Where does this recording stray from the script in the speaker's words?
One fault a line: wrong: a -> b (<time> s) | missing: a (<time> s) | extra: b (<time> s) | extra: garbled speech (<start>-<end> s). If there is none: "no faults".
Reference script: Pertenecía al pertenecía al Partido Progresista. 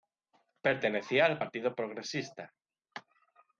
missing: pertenecía al (1.4 s)